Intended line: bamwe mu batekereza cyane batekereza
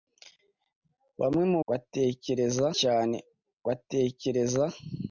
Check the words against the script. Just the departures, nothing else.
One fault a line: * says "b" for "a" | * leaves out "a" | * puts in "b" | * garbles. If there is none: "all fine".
all fine